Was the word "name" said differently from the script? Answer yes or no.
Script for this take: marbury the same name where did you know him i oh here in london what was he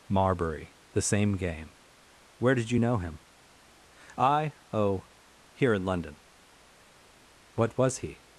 yes